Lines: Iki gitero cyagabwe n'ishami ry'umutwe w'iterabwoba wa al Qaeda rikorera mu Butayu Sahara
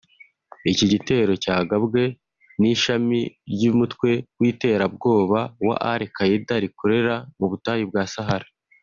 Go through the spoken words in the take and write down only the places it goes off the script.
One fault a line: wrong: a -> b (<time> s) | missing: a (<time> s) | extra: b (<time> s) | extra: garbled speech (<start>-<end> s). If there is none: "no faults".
extra: bwa (7.9 s)